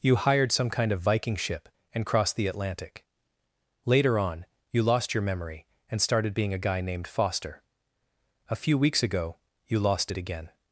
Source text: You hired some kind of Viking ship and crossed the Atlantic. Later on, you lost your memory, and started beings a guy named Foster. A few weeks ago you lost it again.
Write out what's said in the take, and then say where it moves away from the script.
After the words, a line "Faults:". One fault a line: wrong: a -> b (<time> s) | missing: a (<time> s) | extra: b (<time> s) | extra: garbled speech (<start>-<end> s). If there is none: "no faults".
You hired some kind of Viking ship and crossed the Atlantic. Later on, you lost your memory, and started being a guy named Foster. A few weeks ago you lost it again.
Faults:
wrong: beings -> being (6.3 s)